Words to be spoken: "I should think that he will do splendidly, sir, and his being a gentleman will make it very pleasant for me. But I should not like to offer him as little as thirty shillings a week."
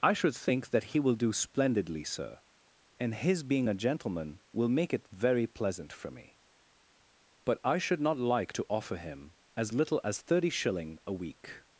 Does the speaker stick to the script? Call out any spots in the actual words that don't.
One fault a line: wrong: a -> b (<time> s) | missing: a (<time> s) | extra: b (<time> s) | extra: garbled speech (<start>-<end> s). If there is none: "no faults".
wrong: shillings -> shilling (10.5 s)